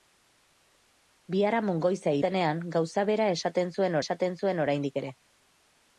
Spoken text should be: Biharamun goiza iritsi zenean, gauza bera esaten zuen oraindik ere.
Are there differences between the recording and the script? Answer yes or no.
yes